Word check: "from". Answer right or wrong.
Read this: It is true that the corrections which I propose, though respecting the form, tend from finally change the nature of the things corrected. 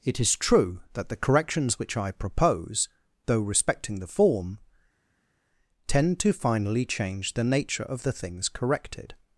wrong